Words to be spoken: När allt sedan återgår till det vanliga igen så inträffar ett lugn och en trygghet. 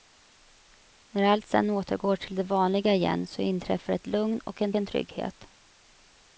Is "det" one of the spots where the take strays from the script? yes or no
no